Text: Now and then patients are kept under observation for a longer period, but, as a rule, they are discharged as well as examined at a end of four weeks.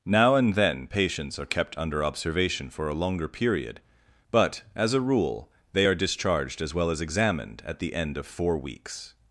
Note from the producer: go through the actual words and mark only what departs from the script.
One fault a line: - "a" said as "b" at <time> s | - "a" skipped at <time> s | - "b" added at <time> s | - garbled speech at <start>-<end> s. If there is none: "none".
- "a" said as "the" at 7.8 s